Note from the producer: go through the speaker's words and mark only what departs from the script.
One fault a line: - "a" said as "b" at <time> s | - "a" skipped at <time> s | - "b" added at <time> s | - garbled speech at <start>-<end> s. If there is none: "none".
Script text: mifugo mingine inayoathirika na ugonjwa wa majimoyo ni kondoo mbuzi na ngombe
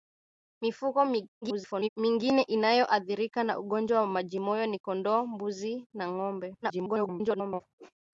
- garbled speech at 1.4-1.9 s
- garbled speech at 6.6-7.6 s